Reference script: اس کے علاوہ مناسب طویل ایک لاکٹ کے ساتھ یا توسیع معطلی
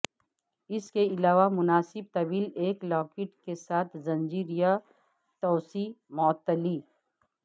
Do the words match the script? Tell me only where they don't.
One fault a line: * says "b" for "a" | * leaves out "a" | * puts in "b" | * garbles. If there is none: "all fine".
* puts in "زنجیر"